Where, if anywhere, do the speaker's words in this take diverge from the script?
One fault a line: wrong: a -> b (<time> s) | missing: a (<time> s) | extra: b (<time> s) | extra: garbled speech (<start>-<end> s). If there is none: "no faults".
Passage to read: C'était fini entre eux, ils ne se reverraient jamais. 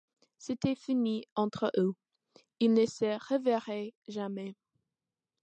no faults